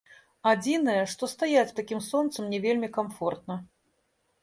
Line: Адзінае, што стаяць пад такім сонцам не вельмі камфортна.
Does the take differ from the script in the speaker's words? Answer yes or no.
yes